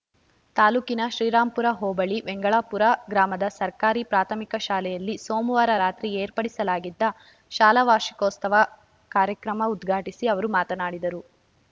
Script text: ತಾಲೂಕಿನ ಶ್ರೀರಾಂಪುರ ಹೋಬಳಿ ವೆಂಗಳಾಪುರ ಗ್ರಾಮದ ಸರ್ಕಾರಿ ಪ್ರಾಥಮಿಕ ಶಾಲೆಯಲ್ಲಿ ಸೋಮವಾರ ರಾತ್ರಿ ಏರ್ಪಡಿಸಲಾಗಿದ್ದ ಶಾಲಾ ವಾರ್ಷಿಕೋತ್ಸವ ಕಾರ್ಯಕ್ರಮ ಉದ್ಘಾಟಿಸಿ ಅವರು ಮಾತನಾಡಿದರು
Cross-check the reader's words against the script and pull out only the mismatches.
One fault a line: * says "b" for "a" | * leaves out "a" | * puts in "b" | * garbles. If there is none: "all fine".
all fine